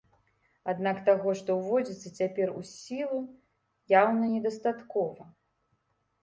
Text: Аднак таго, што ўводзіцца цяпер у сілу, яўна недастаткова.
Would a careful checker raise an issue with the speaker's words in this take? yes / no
no